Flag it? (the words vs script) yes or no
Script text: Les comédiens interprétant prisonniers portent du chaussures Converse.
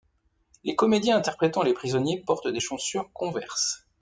yes